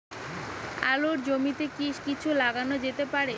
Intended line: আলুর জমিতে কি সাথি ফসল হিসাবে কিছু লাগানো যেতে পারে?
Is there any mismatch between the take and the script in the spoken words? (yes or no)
yes